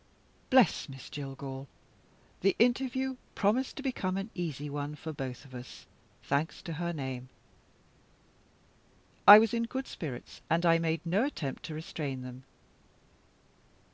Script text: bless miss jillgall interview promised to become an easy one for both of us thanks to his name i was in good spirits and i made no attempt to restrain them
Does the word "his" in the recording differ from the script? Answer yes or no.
yes